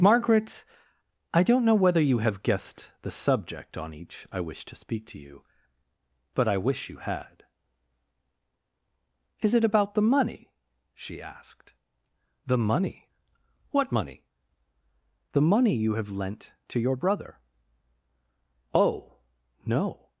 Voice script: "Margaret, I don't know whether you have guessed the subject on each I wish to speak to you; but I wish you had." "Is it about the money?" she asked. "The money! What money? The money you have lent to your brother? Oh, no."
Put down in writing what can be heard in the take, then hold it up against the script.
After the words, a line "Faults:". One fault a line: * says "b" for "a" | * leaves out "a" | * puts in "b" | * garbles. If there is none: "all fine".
"Margaret, I don't know whether you have guessed the subject on each I wish to speak to you; but I wish you had." "Is it about the money?" she asked. "The money! What money? The money you have lent to your brother? Oh, no."
Faults:
all fine